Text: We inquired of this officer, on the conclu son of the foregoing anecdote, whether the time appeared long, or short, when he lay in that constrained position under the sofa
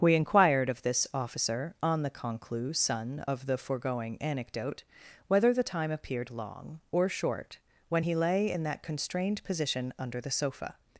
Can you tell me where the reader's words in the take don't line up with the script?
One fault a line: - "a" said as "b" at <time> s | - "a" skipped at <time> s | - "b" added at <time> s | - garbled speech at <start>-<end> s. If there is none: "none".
none